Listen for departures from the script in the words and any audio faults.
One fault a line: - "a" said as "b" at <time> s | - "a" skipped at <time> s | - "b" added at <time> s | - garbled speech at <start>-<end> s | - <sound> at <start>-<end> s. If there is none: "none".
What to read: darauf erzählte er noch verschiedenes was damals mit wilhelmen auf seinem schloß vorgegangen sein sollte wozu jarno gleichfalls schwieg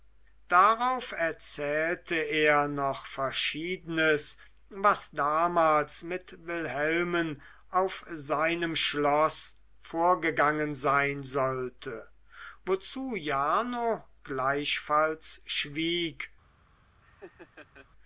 - laugh at 17.0-17.9 s